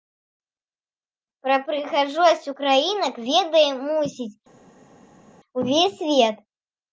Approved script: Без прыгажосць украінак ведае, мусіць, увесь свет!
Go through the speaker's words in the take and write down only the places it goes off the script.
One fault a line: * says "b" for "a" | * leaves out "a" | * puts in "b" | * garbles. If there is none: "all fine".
* says "Пра" for "Без"